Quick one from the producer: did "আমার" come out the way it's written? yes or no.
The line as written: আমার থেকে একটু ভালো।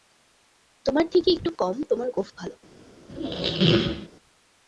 no